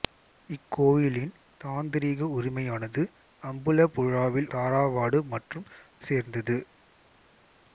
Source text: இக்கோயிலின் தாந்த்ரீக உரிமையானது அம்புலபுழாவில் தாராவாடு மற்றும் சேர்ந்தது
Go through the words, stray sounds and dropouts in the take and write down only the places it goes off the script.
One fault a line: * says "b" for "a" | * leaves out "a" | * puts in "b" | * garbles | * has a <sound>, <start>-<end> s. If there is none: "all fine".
all fine